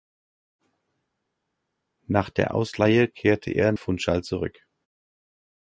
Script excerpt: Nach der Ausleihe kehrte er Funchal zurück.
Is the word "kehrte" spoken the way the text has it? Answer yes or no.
yes